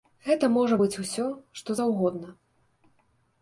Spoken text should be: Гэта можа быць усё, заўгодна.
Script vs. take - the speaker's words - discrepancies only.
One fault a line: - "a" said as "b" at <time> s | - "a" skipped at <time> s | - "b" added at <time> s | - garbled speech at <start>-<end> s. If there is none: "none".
- "што" added at 1.6 s